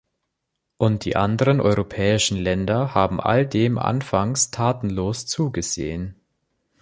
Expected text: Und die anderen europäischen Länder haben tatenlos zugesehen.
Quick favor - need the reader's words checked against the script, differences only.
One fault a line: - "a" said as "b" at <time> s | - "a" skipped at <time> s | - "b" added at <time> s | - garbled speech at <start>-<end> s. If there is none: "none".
- "all dem anfangs" added at 3.2 s